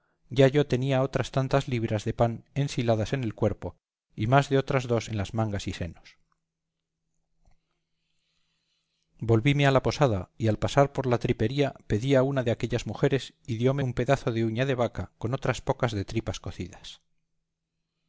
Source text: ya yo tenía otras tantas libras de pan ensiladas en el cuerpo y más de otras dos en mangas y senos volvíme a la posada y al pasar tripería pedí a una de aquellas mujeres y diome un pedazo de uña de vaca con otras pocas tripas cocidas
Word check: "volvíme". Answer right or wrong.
right